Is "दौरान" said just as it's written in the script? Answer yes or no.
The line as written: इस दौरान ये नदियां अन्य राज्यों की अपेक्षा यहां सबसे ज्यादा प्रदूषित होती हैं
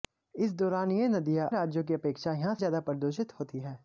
yes